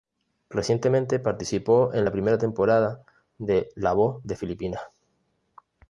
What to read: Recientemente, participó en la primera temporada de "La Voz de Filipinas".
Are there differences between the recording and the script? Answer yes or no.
no